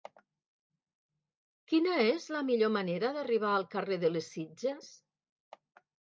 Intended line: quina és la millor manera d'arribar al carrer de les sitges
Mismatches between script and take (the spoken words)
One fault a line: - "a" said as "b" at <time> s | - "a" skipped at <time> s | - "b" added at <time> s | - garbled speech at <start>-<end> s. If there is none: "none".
none